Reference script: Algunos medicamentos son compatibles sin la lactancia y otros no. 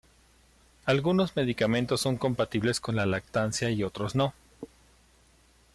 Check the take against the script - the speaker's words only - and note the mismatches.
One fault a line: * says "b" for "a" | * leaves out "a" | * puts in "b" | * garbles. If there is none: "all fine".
* says "con" for "sin"